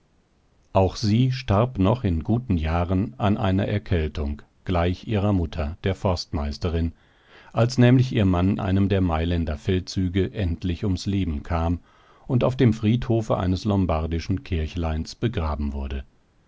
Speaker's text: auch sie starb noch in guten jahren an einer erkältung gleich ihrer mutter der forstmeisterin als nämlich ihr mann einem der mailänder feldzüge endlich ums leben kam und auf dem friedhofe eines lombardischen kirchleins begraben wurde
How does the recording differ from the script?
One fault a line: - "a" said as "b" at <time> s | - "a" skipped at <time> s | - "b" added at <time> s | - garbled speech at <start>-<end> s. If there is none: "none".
none